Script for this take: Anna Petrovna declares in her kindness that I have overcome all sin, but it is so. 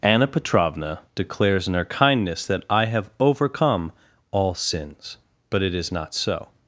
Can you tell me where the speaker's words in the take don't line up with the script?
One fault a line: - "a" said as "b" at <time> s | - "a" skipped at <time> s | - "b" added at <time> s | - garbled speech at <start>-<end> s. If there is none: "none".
- "sin" said as "sins" at 4.5 s
- "not" added at 5.9 s